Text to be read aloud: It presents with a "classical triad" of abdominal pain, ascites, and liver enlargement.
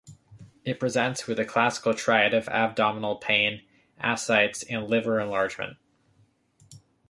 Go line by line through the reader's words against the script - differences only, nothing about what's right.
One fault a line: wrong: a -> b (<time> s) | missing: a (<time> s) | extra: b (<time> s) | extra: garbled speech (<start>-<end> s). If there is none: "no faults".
no faults